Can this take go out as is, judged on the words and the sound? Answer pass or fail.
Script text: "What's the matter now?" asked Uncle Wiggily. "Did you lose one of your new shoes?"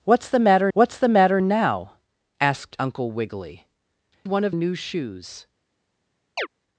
fail